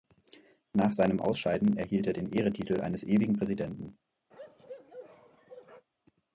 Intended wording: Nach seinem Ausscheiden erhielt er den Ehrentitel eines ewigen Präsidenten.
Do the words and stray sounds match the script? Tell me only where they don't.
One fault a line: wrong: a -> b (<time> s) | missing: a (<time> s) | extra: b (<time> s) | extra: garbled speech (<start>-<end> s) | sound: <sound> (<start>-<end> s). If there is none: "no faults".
sound: bark (4.3-5.9 s)